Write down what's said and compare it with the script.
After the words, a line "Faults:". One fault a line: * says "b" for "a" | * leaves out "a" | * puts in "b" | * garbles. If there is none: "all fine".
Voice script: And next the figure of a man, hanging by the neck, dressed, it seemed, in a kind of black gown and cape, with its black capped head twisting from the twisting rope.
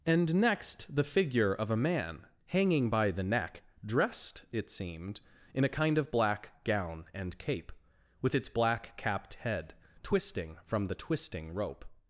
And next the figure of a man, hanging by the neck, dressed, it seemed, in a kind of black gown and cape, with its black capped head twisting from the twisting rope.
Faults:
all fine